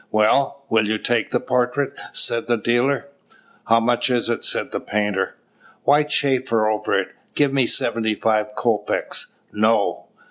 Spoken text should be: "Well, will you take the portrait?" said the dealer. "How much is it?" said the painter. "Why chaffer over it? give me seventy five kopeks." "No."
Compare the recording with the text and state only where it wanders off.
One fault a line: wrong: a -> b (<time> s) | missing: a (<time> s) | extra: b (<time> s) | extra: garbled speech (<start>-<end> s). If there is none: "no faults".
no faults